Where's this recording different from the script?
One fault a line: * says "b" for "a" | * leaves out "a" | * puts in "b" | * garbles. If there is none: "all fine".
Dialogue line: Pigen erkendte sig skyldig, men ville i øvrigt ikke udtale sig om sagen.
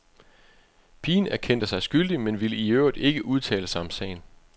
all fine